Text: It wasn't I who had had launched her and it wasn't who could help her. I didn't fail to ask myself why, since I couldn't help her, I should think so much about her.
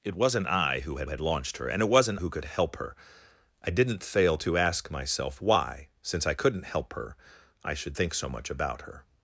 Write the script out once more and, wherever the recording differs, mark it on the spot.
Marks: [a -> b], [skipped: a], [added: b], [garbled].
It wasn't I who had had launched her and it wasn't who could help her. I didn't fail to ask myself why, since I couldn't help her, I should think so much about her.